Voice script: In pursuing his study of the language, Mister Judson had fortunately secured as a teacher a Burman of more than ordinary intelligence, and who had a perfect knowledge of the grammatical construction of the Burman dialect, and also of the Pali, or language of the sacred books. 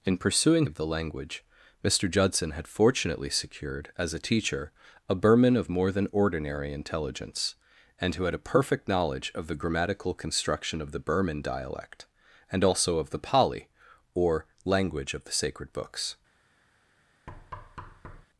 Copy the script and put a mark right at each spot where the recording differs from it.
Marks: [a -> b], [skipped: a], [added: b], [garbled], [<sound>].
In pursuing [skipped: his study] of the language, Mister Judson had fortunately secured as a teacher a Burman of more than ordinary intelligence, and who had a perfect knowledge of the grammatical construction of the Burman dialect, and also of the Pali, or language of the sacred books. [thud]